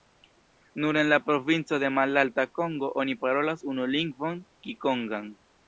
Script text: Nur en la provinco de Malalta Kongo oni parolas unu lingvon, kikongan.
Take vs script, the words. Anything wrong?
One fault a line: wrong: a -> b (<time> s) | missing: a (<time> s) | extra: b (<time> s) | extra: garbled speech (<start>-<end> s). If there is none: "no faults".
no faults